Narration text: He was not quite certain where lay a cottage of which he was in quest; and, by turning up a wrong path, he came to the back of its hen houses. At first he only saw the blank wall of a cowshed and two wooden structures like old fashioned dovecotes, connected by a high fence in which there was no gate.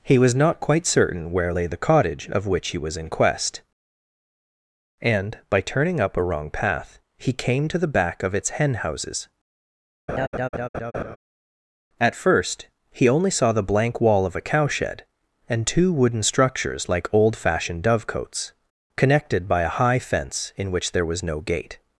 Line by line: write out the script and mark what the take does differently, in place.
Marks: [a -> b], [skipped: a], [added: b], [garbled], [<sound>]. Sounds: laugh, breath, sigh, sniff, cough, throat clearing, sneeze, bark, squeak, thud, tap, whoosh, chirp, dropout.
He was not quite certain where lay [a -> the] cottage of which he was in quest; and, by turning up a wrong path, he came to the back of its hen houses. [laugh] At first he only saw the blank wall of a cowshed and two wooden structures like old fashioned dovecotes, connected by a high fence in which there was no gate.